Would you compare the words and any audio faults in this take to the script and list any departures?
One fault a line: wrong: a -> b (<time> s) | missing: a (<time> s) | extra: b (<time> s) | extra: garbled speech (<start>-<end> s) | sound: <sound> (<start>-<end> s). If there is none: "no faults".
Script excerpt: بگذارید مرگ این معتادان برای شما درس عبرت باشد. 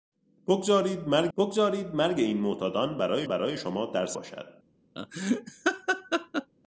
extra: بگذارید مرگ (1.4 s)
extra: برای (3.3 s)
missing: عبرت (4.2 s)
sound: laugh (5.0-6.5 s)